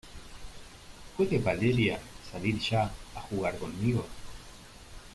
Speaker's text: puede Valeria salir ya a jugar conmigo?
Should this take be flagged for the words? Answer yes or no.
no